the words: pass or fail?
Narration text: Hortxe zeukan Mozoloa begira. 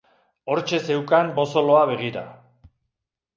pass